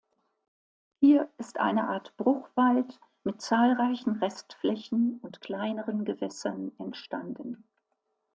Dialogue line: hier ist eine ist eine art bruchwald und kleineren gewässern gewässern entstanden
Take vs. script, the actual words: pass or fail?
fail